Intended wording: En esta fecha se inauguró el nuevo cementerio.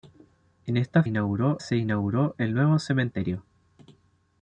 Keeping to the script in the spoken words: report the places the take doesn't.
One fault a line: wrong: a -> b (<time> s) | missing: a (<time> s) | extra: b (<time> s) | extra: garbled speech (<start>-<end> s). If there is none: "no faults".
wrong: fecha -> inauguró (1.0 s)